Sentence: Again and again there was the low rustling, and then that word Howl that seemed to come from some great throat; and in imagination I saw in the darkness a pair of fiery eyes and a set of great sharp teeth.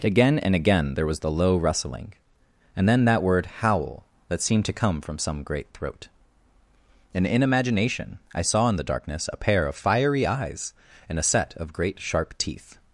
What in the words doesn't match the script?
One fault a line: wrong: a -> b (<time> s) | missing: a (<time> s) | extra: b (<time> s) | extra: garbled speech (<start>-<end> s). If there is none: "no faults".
no faults